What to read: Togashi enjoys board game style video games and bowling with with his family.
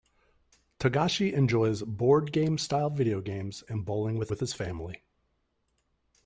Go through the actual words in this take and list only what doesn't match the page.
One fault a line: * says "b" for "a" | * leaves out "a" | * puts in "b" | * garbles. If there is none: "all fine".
all fine